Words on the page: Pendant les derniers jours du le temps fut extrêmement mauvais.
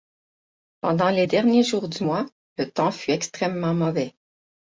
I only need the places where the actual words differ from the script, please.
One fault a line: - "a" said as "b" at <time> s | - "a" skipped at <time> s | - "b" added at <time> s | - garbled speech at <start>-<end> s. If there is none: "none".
- "mois" added at 2.0 s